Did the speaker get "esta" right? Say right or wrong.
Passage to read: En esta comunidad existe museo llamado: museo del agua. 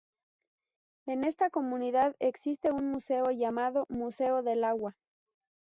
right